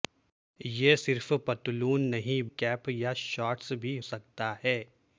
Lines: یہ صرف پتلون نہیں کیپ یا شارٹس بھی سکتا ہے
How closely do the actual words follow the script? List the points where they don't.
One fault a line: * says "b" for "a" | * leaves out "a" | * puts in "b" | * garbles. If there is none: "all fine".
all fine